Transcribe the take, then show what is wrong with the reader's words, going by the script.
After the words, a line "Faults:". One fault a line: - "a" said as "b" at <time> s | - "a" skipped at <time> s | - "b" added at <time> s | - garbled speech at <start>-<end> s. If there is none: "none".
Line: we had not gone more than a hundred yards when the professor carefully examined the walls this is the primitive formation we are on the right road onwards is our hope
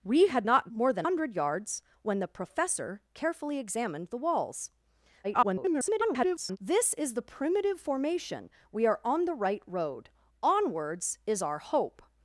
we had not more than hundred yards when the professor carefully examined the walls [garbled] this is the primitive formation we are on the right road onwards is our hope
Faults:
- "gone" skipped at 0.7 s
- "a" skipped at 1.1 s
- garbled speech at 5.2-6.6 s